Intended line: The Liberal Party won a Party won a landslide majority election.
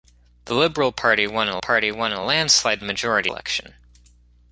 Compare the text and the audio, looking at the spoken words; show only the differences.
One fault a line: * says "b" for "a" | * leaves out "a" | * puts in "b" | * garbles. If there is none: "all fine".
all fine